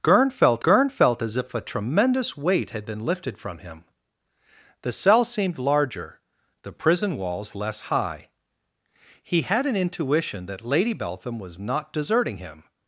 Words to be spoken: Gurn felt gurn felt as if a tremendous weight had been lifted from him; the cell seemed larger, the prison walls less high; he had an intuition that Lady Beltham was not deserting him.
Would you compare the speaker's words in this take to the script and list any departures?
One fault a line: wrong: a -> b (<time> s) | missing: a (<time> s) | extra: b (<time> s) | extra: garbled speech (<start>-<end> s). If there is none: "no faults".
no faults